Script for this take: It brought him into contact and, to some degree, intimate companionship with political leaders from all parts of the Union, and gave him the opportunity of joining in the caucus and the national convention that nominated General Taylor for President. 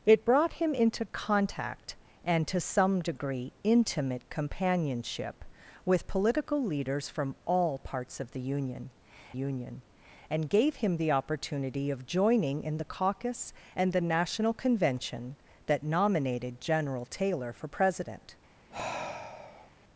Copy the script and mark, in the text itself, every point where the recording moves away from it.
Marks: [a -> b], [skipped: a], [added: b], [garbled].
It brought him into contact and, to some degree, intimate companionship with political leaders from all parts of the Union, [added: Union] and gave him the opportunity of joining in the caucus and the national convention that nominated General Taylor for President.